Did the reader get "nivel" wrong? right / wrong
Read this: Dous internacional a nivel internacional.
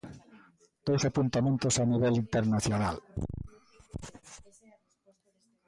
right